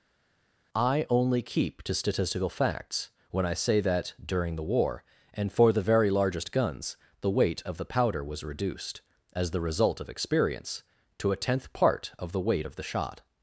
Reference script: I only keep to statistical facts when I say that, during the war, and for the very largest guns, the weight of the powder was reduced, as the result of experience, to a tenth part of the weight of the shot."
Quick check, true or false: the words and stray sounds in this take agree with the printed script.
true